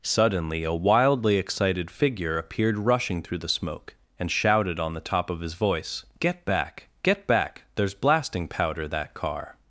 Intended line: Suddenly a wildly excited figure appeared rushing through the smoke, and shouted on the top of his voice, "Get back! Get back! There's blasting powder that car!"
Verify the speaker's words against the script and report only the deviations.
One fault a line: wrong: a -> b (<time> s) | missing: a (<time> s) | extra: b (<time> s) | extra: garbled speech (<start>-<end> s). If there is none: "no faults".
no faults